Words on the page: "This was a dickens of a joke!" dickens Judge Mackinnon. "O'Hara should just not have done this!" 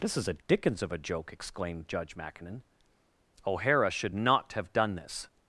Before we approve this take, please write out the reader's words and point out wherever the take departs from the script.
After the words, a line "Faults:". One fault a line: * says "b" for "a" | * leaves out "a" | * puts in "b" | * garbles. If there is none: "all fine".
"This is a dickens of a joke!" exclaimed Judge Mackinnon. "O'Hara should not have done this!"
Faults:
* says "is" for "was"
* says "exclaimed" for "dickens"
* leaves out "just"